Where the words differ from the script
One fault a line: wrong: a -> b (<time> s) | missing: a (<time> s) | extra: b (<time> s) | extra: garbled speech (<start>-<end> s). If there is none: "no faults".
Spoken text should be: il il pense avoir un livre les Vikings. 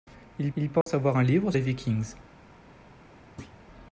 no faults